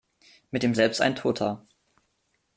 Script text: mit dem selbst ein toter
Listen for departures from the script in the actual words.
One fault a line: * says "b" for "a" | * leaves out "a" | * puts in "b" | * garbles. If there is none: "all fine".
all fine